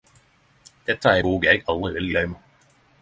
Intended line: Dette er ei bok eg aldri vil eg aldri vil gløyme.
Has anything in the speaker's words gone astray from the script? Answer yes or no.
yes